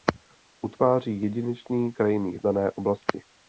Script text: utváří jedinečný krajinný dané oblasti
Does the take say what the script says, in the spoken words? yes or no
yes